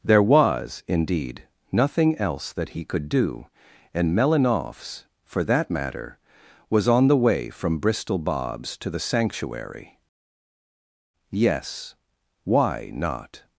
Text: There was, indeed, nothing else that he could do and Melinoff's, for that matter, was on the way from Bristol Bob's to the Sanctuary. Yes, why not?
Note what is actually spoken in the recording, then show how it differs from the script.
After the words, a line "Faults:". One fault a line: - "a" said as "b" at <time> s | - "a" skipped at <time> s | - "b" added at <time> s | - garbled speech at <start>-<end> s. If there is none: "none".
There was, indeed, nothing else that he could do and Melinoff's, for that matter, was on the way from Bristol Bob's to the Sanctuary. Yes, why not?
Faults:
none